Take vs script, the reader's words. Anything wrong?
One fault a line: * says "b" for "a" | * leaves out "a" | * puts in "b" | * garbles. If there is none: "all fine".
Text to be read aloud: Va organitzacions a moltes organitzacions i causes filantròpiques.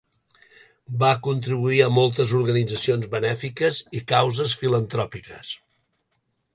* says "contribuir" for "organitzacions"
* puts in "benèfiques"